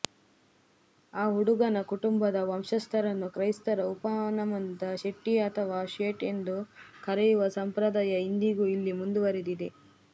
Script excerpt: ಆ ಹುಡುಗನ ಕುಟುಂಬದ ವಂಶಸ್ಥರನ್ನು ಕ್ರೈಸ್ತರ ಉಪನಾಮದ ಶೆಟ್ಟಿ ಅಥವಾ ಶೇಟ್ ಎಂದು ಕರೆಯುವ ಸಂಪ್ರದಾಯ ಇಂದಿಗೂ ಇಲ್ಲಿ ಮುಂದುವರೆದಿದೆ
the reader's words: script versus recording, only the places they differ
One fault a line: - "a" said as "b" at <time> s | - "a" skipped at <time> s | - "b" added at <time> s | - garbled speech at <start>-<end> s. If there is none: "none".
none